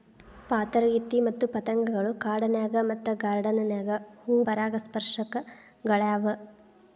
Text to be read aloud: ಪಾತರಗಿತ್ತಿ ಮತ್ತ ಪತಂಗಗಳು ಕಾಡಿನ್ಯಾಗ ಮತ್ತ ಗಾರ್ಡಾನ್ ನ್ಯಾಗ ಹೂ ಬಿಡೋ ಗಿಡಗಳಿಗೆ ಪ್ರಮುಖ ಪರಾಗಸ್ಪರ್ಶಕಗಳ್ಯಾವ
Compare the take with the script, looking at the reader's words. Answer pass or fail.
fail